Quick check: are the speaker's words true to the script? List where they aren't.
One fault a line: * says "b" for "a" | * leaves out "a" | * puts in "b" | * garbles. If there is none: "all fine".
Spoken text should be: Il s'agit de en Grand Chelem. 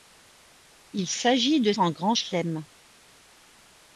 all fine